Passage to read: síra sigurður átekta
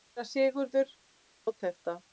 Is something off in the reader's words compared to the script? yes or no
no